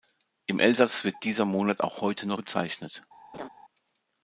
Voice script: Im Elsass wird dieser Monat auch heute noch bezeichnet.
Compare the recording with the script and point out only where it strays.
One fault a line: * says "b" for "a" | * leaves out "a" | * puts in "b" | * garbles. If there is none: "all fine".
all fine